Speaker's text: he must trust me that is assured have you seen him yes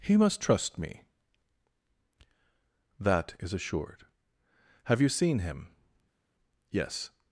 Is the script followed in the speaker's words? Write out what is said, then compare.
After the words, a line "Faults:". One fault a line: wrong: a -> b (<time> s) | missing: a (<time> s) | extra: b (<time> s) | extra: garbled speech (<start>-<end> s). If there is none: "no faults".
he must trust me that is assured have you seen him yes
Faults:
no faults